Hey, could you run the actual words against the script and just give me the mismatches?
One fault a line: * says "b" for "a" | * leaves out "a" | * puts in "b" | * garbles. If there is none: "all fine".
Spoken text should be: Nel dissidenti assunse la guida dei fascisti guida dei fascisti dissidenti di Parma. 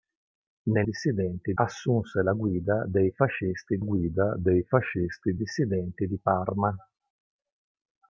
all fine